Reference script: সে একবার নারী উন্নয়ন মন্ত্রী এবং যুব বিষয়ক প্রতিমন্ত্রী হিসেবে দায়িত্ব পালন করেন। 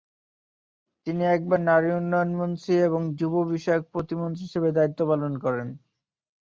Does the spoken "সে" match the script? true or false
false